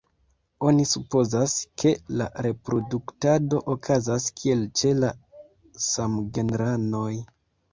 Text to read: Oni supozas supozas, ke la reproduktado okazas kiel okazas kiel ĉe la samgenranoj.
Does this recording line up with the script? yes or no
no